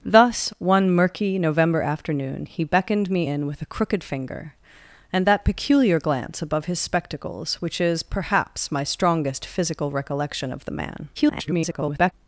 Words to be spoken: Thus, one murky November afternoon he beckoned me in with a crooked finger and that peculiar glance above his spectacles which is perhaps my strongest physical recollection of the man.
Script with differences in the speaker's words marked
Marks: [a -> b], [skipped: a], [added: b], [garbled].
Thus, one murky November afternoon he beckoned me in with a crooked finger and that peculiar glance above his spectacles which is perhaps my strongest physical recollection of the man. [garbled]